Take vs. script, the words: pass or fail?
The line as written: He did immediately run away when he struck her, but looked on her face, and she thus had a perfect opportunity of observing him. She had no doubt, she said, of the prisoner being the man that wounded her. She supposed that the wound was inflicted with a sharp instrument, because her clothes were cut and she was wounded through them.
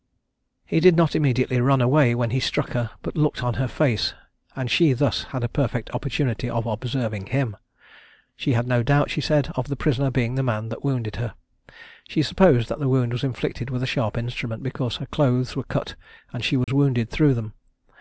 fail